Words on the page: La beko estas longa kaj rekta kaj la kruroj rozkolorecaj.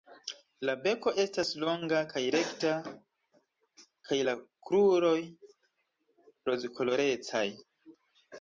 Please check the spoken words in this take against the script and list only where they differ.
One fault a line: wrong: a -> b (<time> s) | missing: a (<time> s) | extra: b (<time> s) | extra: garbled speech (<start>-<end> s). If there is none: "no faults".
no faults